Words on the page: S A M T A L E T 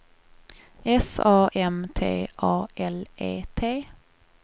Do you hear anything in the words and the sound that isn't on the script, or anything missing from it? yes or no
no